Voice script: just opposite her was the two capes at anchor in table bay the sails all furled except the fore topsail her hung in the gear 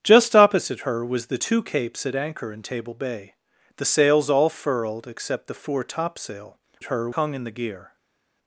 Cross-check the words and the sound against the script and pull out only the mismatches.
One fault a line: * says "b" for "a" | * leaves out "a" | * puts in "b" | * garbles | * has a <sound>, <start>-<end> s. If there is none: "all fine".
all fine